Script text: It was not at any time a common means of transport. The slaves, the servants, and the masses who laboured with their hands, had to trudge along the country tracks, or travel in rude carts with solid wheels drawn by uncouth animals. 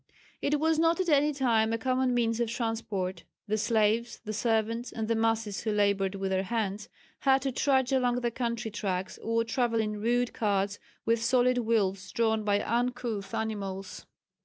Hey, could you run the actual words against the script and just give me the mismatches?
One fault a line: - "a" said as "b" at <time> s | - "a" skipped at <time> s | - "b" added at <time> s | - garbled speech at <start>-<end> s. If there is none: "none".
none